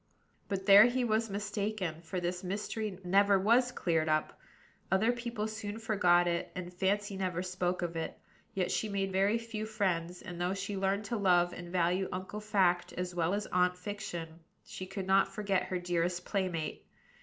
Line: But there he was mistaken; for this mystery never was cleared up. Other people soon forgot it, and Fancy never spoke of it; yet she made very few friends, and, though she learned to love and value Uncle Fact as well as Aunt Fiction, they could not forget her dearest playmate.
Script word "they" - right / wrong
wrong